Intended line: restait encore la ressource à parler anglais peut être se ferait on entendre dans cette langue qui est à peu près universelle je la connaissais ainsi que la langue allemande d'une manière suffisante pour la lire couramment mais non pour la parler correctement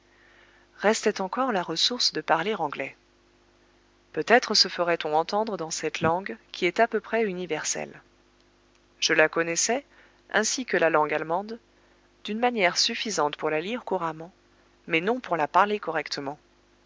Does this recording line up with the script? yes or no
no